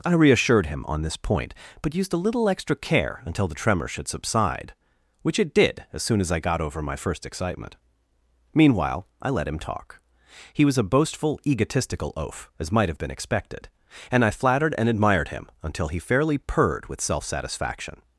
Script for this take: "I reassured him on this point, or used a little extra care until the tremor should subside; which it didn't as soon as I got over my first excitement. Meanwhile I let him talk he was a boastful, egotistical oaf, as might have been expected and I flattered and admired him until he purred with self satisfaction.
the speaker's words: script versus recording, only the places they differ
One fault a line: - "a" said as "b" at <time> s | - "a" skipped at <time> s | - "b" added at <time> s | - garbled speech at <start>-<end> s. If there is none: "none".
- "or" said as "but" at 1.8 s
- "didn't" said as "did" at 5.5 s
- "fairly" added at 16.0 s